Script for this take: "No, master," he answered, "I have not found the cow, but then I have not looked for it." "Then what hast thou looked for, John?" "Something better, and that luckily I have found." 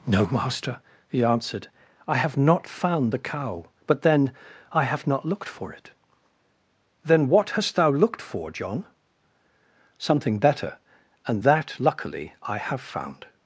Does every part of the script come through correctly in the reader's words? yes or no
yes